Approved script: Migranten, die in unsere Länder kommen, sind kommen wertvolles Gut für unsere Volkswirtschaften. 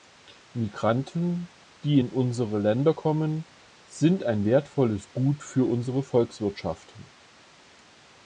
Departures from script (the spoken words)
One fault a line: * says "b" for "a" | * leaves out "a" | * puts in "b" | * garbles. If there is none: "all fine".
* says "ein" for "kommen"